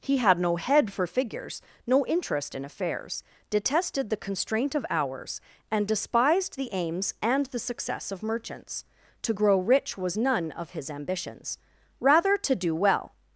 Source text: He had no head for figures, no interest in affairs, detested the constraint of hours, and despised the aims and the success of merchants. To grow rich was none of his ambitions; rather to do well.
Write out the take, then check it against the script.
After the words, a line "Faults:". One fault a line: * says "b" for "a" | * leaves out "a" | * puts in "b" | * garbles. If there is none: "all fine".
He had no head for figures, no interest in affairs, detested the constraint of hours, and despised the aims and the success of merchants. To grow rich was none of his ambitions; rather to do well.
Faults:
all fine